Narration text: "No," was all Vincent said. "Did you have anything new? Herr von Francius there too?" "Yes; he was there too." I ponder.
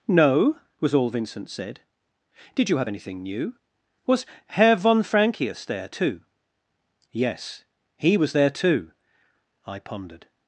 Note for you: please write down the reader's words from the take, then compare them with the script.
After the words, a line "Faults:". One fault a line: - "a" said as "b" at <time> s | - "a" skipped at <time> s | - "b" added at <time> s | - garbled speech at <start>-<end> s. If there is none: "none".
"No," was all Vincent said. "Did you have anything new? Was Herr von Francius there too?" "Yes; he was there too." I pondered.
Faults:
- "Was" added at 4.1 s
- "ponder" said as "pondered" at 9.8 s